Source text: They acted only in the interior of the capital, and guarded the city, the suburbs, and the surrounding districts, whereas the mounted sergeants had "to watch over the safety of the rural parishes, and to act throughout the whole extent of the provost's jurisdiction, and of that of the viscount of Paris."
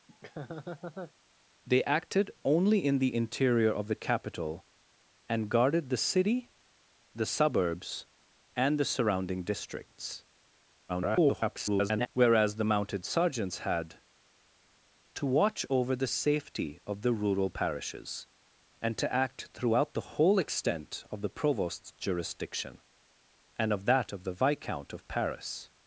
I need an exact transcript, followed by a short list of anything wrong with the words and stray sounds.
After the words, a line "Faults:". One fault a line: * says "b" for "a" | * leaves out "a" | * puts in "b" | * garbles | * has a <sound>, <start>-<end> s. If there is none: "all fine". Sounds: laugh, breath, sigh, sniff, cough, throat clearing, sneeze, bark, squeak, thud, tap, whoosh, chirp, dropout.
They acted only in the interior of the capital, and guarded the city, the suburbs, and the surrounding districts, [garbled] whereas the mounted sergeants had "to watch over the safety of the rural parishes, and to act throughout the whole extent of the provost's jurisdiction, and of that of the viscount of Paris."
Faults:
* has a laugh, 0.1-1.1 s
* garbles